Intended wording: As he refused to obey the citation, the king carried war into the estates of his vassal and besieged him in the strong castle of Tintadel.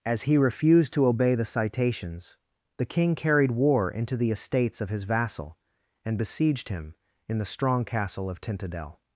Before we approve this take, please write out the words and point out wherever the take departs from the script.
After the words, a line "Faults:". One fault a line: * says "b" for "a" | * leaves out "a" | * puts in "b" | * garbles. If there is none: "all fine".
As he refused to obey the citations, the king carried war into the estates of his vassal and besieged him in the strong castle of Tintadel.
Faults:
* says "citations" for "citation"